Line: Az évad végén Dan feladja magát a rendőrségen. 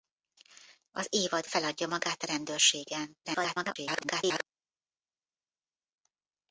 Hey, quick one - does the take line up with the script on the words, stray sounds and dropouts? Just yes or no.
no